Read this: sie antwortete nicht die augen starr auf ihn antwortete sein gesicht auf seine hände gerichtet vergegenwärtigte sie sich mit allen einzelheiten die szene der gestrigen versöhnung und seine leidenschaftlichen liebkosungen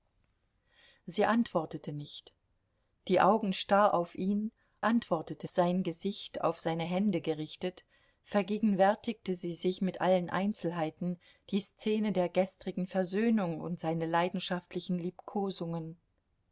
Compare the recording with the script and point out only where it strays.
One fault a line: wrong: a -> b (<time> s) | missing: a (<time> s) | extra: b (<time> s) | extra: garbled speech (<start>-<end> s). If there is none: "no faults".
no faults